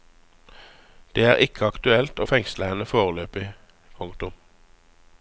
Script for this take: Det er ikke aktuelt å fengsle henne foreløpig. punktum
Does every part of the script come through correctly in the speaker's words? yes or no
yes